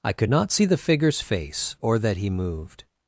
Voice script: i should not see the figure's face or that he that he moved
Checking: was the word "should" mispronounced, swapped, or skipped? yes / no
yes